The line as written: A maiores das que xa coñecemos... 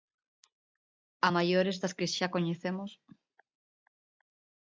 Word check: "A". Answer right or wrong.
right